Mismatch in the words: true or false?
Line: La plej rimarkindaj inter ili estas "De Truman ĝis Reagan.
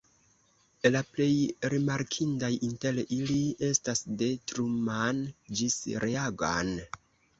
false